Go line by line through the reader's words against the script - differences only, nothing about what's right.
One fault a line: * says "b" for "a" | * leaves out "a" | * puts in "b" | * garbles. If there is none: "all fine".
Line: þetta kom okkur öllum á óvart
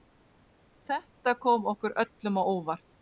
all fine